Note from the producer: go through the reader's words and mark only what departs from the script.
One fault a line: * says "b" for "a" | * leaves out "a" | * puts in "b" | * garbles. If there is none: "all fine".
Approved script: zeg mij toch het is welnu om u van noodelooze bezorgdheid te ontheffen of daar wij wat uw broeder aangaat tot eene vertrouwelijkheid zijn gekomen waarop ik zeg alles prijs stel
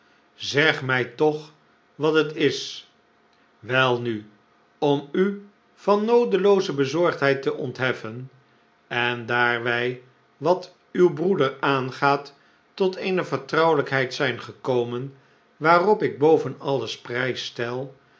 * puts in "wat"
* says "en" for "of"
* says "boven" for "zeg"